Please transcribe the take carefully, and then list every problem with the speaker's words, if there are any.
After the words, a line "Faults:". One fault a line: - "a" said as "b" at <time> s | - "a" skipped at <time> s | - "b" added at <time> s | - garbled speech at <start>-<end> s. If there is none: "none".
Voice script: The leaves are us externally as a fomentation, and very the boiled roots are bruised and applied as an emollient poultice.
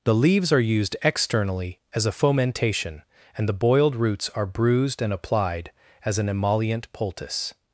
The leaves are used externally as a fomentation, and the boiled roots are bruised and applied as an emollient poultice.
Faults:
- "us" said as "used" at 0.6 s
- "very" skipped at 3.5 s